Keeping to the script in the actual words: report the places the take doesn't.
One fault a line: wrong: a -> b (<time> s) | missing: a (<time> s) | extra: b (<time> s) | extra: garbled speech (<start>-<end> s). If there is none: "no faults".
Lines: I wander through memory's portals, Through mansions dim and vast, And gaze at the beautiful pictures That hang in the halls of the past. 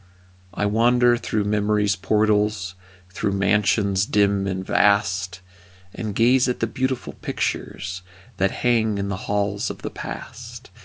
no faults